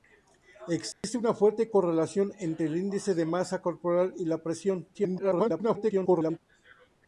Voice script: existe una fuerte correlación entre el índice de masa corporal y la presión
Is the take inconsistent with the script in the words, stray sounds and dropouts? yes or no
yes